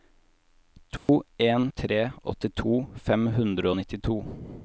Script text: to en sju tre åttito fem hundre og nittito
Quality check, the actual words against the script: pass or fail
fail